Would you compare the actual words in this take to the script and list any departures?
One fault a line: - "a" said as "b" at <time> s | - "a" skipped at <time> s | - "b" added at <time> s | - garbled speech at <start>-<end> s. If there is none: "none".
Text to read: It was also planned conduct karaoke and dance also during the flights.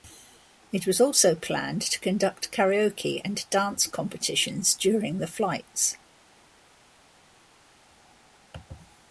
- "to" added at 1.8 s
- "also" said as "competitions" at 3.9 s